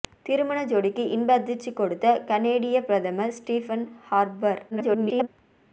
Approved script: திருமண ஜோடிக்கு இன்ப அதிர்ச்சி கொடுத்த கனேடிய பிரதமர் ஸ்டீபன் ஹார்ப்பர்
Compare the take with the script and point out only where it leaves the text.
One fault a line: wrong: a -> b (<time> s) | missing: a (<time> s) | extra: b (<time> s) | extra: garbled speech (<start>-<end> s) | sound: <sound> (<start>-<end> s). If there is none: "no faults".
extra: garbled speech (4.7-5.3 s)